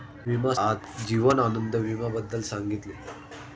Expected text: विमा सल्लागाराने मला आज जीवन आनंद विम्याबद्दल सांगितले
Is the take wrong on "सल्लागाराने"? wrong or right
wrong